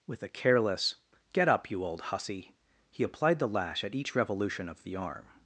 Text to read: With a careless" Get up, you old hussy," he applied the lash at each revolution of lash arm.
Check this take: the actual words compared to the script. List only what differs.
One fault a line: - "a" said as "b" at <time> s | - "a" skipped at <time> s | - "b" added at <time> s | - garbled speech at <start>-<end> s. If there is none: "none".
- "lash" said as "the" at 4.8 s